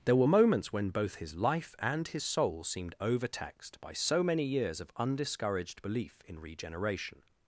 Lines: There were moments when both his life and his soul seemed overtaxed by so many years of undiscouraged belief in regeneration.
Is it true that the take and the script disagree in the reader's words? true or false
false